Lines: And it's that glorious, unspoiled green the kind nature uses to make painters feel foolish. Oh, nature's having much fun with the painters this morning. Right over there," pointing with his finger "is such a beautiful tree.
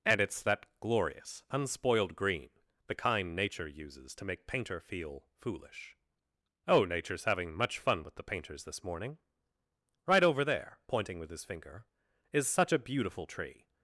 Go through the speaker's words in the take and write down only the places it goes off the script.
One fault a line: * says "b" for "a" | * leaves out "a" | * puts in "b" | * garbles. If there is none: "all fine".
* says "painter" for "painters"